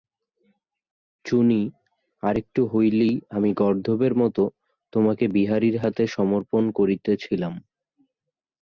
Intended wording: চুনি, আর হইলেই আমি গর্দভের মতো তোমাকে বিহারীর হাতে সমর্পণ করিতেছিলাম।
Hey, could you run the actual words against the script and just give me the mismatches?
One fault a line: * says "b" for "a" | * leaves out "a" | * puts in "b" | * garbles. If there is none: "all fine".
* puts in "একটু"